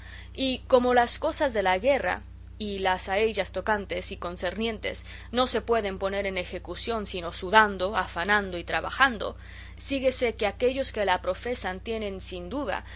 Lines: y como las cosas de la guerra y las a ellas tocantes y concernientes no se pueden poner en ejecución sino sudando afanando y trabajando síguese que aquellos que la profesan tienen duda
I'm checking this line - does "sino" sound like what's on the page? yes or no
yes